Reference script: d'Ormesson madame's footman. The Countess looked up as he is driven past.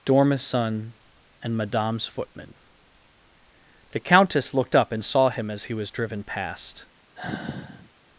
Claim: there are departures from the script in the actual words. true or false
true